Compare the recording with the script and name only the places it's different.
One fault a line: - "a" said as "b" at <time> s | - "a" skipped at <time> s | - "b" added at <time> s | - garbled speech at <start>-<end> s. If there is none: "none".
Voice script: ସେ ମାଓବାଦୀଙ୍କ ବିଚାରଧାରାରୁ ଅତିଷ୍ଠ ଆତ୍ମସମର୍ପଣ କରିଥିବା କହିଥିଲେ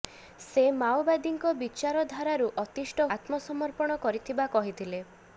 none